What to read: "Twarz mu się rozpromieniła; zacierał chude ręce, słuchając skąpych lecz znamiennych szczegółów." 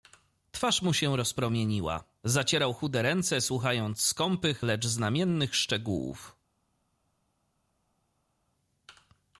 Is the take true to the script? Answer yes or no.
yes